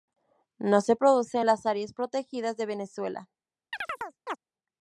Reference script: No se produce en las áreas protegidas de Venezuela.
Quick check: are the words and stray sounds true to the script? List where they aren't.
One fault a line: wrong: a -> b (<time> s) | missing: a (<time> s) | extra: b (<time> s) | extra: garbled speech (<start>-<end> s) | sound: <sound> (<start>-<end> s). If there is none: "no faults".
sound: chirp (3.7-4.4 s)